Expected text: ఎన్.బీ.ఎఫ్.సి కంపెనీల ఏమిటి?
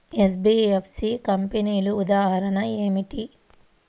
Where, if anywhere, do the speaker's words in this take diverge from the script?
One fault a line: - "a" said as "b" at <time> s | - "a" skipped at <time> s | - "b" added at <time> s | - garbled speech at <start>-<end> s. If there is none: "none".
- "ఉదాహరణ" added at 1.9 s